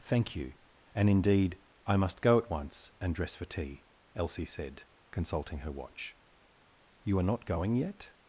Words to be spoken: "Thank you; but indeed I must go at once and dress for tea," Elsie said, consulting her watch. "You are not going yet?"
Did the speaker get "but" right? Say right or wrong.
wrong